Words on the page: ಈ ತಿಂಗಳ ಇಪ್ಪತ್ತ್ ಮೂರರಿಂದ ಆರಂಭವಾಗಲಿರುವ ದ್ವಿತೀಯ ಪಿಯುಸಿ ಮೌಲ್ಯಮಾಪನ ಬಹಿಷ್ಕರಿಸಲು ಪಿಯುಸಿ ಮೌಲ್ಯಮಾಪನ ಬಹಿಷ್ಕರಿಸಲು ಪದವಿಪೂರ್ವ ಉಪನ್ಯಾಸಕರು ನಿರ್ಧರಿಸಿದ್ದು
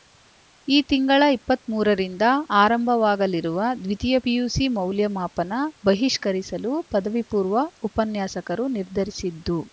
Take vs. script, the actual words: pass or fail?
fail